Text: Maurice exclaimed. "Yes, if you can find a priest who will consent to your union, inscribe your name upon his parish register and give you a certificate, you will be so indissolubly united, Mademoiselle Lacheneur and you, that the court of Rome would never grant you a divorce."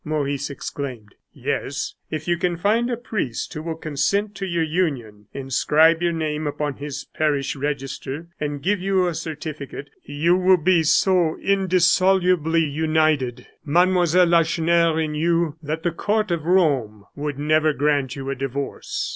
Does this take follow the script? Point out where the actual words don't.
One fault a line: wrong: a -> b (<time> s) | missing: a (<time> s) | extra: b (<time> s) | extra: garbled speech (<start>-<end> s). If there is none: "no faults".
no faults